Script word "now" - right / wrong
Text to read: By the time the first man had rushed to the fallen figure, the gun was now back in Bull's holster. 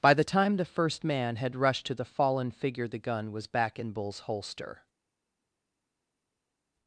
wrong